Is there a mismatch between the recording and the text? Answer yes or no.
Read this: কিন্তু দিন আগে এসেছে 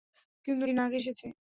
no